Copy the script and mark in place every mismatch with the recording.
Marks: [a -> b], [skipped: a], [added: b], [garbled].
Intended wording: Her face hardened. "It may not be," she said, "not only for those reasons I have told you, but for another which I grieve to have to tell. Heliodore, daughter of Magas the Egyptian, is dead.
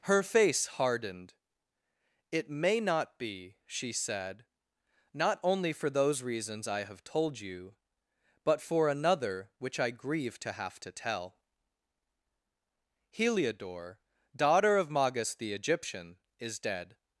Her face hardened. "It may not be," she said, "not only for those reasons I have told you, but for another which I grieve to have to tell. Heliodore, daughter of Magas the Egyptian, is dead.